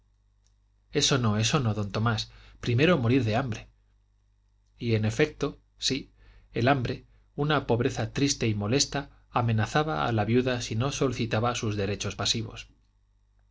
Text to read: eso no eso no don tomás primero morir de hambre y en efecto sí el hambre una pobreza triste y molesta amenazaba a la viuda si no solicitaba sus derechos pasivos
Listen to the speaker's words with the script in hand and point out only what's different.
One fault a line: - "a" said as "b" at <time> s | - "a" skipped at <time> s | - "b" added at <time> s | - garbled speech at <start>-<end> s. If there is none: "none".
none